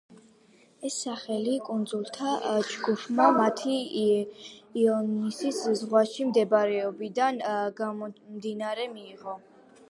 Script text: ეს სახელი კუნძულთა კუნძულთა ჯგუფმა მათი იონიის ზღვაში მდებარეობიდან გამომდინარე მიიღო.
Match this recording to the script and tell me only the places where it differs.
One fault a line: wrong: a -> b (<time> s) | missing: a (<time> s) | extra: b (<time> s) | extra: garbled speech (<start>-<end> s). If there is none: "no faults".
missing: კუნძულთა (2.3 s)